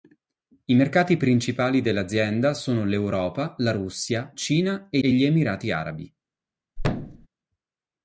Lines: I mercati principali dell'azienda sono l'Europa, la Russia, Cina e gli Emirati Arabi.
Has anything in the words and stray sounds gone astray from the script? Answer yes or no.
yes